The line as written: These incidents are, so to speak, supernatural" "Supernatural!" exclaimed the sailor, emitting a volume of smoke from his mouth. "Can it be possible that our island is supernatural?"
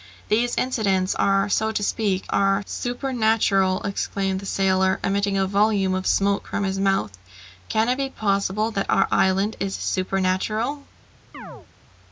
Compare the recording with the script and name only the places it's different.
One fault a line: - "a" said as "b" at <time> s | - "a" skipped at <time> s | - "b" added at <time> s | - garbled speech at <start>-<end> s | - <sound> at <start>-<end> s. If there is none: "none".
- "supernatural" said as "are" at 2.3 s
- chirp at 11.3-11.7 s